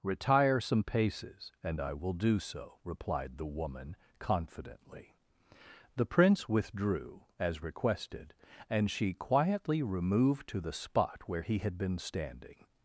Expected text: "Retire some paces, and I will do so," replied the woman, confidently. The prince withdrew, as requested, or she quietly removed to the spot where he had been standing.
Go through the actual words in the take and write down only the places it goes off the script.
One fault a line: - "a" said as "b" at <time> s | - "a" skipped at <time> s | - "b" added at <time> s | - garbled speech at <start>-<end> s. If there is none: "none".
- "or" said as "and" at 8.7 s